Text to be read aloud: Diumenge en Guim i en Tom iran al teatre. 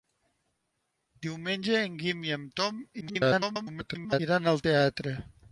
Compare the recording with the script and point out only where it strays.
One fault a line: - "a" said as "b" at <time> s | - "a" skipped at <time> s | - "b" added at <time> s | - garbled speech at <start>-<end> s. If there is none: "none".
- garbled speech at 3.0-4.2 s